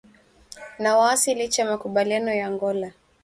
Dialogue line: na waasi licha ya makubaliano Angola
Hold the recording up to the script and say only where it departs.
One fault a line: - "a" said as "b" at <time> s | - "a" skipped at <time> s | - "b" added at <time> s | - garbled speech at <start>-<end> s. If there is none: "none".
- "ya" added at 2.3 s